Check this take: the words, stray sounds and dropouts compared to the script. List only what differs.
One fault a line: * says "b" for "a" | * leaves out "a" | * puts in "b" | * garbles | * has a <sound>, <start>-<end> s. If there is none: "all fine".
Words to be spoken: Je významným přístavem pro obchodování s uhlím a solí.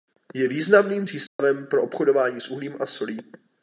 * has a dropout, 1.3-1.4 s